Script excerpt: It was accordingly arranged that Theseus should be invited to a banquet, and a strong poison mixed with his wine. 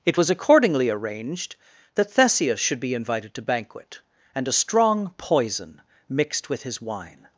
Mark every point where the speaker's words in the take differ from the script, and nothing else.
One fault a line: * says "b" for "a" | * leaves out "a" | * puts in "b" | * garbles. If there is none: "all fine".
* leaves out "a"